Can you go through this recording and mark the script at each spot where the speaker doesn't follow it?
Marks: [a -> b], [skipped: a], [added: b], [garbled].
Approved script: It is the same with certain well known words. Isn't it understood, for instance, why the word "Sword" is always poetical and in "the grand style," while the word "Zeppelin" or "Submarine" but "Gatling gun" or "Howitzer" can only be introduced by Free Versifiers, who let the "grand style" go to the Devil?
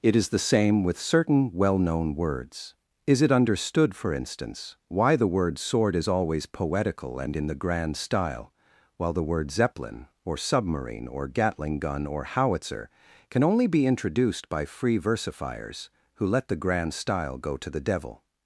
It is the same with certain well known words. [Isn't -> Is] it understood, for instance, why the word "Sword" is always poetical and in "the grand style," while the word "Zeppelin" or "Submarine" [but -> or] "Gatling gun" or "Howitzer" can only be introduced by Free Versifiers, who let the "grand style" go to the Devil?